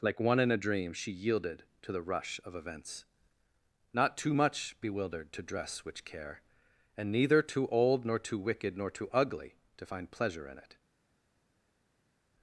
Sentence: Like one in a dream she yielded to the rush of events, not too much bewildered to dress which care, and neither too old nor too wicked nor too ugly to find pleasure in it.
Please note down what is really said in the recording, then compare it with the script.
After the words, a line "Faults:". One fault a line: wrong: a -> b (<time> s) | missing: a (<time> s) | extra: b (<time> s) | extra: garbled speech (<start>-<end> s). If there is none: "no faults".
Like one in a dream she yielded to the rush of events, not too much bewildered to dress which care, and neither too old nor too wicked nor too ugly to find pleasure in it.
Faults:
no faults